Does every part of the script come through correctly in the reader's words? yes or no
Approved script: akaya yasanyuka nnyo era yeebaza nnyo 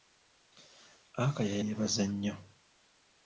no